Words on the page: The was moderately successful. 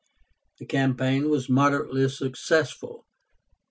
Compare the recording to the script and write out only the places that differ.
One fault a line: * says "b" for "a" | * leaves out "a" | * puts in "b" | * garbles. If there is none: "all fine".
* puts in "campaign"